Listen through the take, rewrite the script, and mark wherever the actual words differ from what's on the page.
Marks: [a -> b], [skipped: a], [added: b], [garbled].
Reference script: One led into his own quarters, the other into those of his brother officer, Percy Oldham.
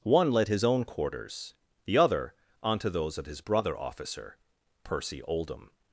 One led [skipped: into] his own quarters, the other [into -> onto] those of his brother officer, Percy Oldham.